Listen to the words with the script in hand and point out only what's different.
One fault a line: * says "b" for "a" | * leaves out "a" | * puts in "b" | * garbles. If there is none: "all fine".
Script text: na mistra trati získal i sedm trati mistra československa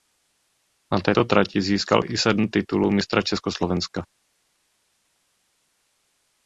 * says "této" for "mistra"
* says "titulů" for "trati"